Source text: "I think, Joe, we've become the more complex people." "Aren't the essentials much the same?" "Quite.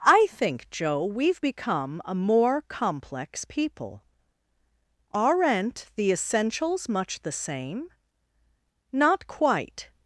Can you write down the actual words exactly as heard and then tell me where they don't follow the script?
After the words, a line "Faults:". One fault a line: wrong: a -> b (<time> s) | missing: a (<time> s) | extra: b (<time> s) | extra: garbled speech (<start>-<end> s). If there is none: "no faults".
"I think, Joe, we've become a more complex people." "Aren't the essentials much the same?" "Not quite.
Faults:
wrong: the -> a (2.0 s)
extra: Not (8.9 s)